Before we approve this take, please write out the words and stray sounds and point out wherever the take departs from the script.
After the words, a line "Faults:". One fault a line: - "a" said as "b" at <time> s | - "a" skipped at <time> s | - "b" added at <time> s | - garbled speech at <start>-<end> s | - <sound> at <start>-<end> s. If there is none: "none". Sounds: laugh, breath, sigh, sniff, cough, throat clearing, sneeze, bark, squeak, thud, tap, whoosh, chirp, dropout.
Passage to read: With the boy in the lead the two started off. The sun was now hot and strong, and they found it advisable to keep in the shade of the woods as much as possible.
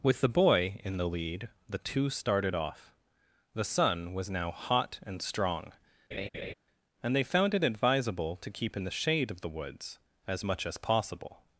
With the boy in the lead the two started off. The sun was now hot and strong, and they found it advisable to keep in the shade of the woods as much as possible.
Faults:
- laugh at 6.1-6.5 s